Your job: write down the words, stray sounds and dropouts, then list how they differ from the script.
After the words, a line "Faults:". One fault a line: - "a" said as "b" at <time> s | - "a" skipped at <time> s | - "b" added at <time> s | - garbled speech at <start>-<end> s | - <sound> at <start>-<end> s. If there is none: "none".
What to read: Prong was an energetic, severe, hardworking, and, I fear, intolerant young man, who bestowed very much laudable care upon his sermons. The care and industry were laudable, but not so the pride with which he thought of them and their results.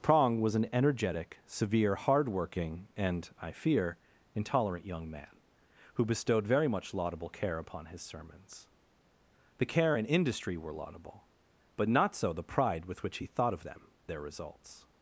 Prong was an energetic, severe, hardworking, and, I fear, intolerant young man, who bestowed very much laudable care upon his sermons. The care and industry were laudable, but not so the pride with which he thought of them their results.
Faults:
- "and" skipped at 13.9 s